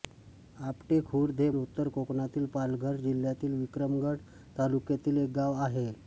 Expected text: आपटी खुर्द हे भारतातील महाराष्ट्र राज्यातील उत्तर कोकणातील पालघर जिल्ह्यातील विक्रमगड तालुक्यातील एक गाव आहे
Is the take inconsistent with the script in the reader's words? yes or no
yes